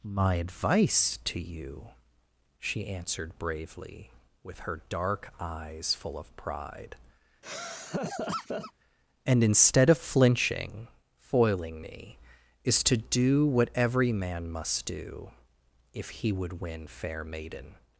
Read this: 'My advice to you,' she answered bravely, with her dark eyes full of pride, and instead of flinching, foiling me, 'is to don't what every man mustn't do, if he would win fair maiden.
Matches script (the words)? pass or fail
fail